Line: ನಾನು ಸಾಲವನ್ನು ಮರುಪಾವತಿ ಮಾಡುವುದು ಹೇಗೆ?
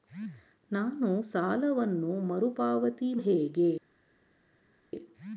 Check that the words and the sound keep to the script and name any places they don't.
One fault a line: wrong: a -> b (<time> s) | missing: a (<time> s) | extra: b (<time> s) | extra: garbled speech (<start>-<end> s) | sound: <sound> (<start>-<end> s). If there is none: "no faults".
missing: ಮಾಡುವುದು (3.1 s)